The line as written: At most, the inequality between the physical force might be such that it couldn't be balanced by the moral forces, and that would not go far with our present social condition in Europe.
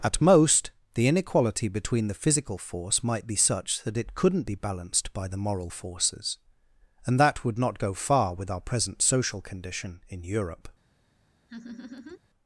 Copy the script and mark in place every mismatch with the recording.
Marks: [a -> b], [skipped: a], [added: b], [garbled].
At most, the inequality between the physical force might be such that it couldn't be balanced by the moral forces, and that would not go far with our present social condition in Europe.